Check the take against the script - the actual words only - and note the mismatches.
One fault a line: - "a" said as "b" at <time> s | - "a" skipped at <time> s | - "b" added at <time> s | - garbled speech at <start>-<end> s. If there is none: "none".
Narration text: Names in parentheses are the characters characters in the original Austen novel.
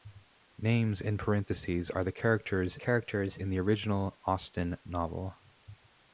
none